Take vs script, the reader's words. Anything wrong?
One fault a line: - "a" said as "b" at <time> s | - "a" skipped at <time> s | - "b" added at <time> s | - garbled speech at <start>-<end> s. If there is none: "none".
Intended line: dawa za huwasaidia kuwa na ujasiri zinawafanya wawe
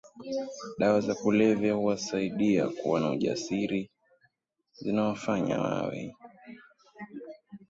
- "kulevya" added at 1.1 s